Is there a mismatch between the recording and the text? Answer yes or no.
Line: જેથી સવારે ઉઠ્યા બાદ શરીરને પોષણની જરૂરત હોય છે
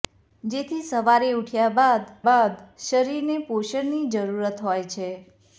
yes